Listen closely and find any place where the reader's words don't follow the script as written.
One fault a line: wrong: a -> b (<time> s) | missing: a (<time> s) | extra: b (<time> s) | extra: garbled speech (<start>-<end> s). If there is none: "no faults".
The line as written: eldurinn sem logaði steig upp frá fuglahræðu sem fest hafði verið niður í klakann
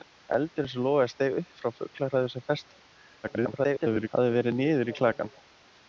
extra: garbled speech (3.2-4.1 s)